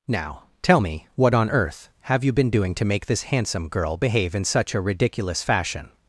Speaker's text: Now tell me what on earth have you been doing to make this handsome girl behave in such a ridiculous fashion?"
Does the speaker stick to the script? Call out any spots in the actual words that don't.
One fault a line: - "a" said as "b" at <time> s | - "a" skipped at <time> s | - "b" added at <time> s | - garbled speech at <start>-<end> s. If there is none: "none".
none